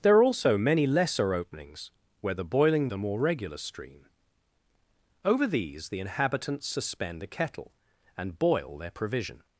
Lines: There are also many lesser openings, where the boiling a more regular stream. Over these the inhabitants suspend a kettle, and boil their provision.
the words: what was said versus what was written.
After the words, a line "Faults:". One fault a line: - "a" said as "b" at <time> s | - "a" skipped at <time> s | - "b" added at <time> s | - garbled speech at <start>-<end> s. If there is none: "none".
There are also many lesser openings, where the boiling a more regular stream. Over these the inhabitants suspend a kettle, and boil their provision.
Faults:
none